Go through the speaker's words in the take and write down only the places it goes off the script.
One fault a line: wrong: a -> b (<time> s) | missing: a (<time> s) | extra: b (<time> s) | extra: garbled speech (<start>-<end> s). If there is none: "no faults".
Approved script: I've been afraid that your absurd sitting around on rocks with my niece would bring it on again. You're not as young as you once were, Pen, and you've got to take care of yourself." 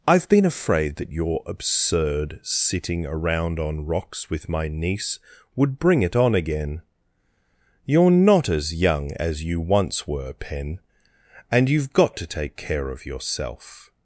no faults